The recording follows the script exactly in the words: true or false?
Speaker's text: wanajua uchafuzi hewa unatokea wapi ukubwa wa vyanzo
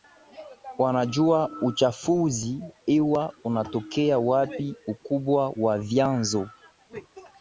true